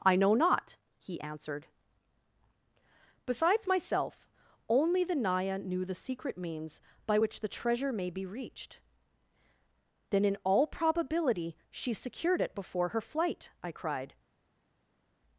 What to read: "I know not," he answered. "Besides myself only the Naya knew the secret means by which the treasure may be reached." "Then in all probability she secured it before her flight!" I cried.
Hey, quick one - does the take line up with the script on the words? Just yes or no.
yes